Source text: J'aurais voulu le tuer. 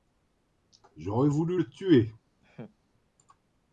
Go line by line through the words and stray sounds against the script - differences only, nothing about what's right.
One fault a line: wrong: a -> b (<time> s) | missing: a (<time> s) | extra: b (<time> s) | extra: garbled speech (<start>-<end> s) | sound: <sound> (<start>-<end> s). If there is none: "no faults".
sound: laugh (2.4-2.8 s)